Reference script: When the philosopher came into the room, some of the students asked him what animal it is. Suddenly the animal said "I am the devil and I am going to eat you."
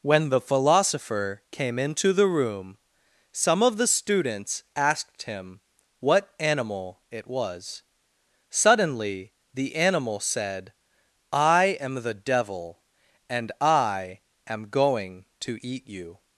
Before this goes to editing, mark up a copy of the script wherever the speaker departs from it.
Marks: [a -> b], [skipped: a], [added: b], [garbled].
When the philosopher came into the room, some of the students asked him what animal it [is. -> was] Suddenly the animal said "I am the devil and I am going to eat you."